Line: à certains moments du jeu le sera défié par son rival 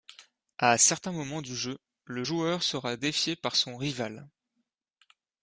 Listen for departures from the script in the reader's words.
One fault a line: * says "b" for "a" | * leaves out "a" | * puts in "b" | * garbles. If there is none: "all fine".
* puts in "joueur"